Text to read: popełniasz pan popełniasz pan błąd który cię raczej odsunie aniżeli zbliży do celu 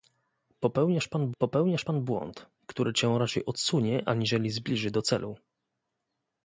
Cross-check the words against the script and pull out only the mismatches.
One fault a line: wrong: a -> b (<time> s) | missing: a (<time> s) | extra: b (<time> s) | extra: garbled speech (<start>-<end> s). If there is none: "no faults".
no faults